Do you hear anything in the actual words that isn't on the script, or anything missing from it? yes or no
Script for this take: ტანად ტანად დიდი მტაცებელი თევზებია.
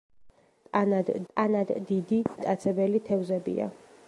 no